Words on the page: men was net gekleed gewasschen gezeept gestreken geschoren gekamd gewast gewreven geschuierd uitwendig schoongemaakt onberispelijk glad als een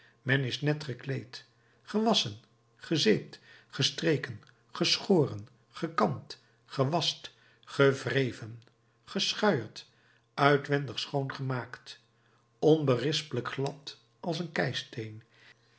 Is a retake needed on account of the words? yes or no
yes